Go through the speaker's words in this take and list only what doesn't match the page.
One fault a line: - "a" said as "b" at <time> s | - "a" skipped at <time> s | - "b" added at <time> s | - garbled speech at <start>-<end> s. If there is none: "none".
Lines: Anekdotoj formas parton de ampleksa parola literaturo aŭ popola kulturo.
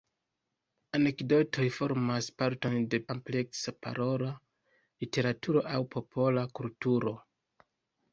none